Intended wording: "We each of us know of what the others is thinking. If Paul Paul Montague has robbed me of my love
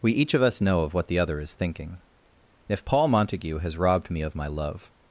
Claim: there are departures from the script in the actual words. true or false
true